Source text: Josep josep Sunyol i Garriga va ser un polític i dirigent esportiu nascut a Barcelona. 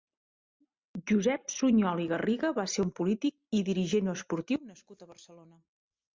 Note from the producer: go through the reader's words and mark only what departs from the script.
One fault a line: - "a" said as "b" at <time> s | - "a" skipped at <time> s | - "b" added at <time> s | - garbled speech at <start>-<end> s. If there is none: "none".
- "josep" skipped at 1.5 s